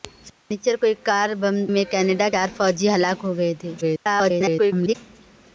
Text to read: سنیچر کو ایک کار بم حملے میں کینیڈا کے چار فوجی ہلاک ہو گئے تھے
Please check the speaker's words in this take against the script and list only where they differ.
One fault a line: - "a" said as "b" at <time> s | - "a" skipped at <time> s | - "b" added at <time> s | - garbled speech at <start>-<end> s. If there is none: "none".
- "حملے" skipped at 1.6 s
- "کے" skipped at 2.3 s
- garbled speech at 3.8-5.0 s